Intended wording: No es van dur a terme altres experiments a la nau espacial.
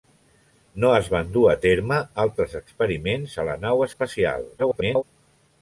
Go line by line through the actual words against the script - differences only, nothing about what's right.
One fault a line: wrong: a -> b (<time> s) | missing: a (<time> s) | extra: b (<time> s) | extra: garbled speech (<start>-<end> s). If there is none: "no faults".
extra: garbled speech (4.6-5.0 s)